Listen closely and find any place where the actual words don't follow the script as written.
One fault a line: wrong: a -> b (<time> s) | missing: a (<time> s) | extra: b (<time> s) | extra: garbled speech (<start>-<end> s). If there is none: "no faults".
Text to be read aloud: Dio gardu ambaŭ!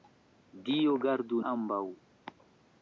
no faults